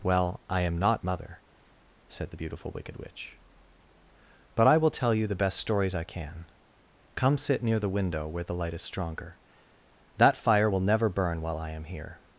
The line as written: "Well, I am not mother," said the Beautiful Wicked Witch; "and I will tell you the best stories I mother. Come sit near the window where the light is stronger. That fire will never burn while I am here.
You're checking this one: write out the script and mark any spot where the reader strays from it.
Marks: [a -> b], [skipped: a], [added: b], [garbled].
"Well, I am not mother," said the Beautiful Wicked Witch; ["and -> but] I will tell you the best stories I [mother. -> can] Come sit near the window where the light is stronger. That fire will never burn while I am here.